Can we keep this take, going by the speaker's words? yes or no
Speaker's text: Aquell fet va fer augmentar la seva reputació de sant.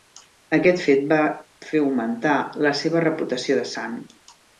no